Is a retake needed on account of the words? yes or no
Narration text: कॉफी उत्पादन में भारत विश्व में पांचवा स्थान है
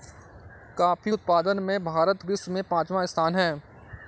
no